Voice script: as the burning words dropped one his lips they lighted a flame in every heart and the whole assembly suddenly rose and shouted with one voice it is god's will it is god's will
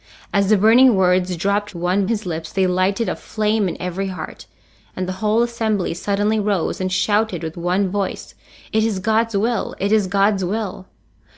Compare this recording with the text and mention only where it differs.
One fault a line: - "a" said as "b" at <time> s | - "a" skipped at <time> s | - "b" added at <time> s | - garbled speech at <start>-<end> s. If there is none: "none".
none